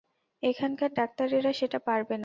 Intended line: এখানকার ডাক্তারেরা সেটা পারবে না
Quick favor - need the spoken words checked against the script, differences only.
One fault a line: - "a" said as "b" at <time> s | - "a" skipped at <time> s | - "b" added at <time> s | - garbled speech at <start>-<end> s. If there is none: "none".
none